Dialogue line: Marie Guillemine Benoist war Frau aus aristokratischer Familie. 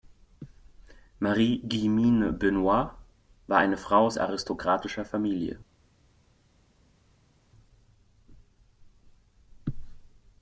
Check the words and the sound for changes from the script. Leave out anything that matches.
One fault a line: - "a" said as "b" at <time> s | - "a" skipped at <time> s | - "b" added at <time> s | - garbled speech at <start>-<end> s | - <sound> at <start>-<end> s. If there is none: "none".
- "eine" added at 3.6 s